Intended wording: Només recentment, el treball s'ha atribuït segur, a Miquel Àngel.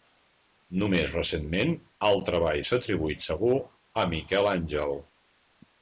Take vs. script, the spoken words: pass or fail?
pass